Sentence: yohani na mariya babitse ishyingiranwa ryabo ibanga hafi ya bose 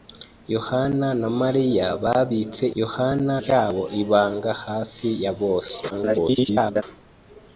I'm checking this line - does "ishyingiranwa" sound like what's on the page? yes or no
no